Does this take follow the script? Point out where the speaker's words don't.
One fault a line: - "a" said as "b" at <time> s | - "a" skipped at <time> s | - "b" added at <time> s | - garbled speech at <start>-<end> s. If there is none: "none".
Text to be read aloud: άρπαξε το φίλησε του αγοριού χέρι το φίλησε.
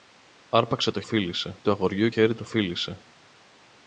none